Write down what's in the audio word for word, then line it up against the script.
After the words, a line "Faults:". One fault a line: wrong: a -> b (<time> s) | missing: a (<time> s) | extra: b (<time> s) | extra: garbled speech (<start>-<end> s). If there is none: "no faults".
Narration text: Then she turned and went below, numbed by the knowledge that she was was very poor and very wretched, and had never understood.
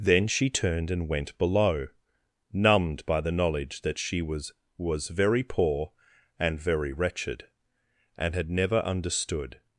Then she turned and went below, numbed by the knowledge that she was was very poor and very wretched, and had never understood.
Faults:
no faults